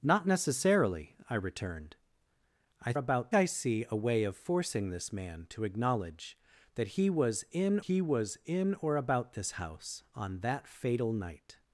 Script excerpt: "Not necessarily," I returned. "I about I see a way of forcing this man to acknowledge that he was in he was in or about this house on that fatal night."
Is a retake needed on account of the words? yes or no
no